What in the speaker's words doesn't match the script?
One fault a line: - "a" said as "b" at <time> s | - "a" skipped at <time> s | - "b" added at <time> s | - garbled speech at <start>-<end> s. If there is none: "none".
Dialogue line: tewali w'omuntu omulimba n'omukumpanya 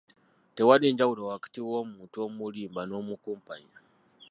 - "njawulo wakati" added at 0.9 s